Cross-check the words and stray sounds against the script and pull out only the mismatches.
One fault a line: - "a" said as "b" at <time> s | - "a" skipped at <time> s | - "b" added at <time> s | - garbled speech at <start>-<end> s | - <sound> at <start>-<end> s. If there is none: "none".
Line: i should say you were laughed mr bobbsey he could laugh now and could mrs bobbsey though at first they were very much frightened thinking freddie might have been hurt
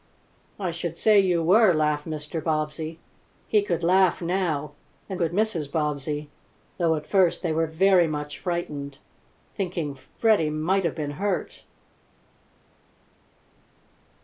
none